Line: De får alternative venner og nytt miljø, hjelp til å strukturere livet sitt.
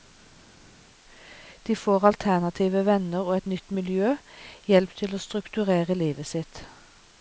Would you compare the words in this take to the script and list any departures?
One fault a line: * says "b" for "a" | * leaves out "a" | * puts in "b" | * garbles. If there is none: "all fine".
* puts in "et"